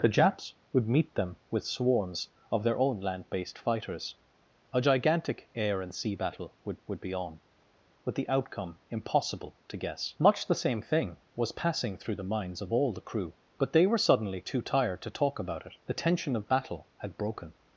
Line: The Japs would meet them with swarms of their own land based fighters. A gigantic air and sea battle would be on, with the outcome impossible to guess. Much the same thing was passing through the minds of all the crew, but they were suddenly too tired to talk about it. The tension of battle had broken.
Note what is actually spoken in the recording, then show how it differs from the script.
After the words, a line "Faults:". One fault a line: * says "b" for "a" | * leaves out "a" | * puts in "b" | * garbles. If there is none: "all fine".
The Japs would meet them with swarms of their own land based fighters. A gigantic air and sea battle would would be on, with the outcome impossible to guess. Much the same thing was passing through the minds of all the crew, but they were suddenly too tired to talk about it. The tension of battle had broken.
Faults:
* puts in "would"